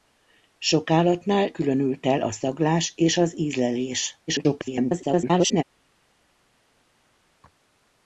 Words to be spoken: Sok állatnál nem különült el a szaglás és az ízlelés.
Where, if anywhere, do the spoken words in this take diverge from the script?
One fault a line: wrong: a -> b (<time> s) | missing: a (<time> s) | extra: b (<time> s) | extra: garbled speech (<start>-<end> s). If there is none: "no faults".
missing: nem (1.5 s)
extra: garbled speech (4.3-5.6 s)